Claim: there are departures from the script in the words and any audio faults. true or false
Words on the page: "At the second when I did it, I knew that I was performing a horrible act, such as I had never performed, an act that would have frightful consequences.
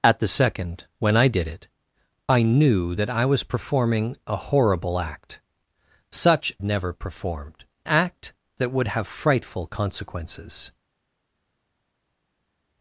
true